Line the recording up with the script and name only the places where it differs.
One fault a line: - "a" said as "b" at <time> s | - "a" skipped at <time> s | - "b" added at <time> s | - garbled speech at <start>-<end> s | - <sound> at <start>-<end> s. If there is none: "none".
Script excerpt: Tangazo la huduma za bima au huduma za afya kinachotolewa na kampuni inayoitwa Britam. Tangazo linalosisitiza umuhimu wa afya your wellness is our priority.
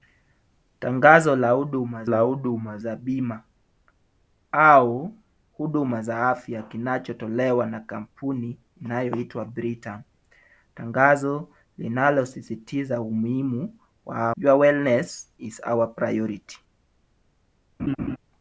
- "la huduma" added at 2.0 s
- "afya" skipped at 14.3 s
- laugh at 17.8-18.2 s